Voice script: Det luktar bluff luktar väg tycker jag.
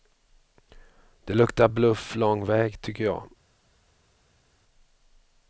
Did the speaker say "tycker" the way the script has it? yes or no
yes